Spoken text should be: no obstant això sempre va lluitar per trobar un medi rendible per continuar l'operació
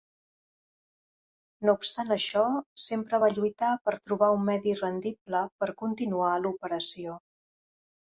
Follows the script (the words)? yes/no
yes